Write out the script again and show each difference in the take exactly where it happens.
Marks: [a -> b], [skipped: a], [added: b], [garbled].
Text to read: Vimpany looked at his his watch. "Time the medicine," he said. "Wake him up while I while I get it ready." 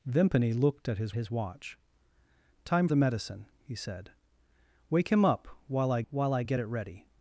Vimpany looked at his his watch. "Time the medicine," he said. "Wake him up while I while I get it ready."